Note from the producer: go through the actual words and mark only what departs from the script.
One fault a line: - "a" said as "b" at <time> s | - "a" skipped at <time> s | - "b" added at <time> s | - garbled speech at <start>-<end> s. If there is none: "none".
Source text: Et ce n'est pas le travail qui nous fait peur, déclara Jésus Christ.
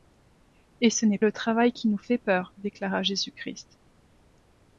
- "pas" skipped at 1.2 s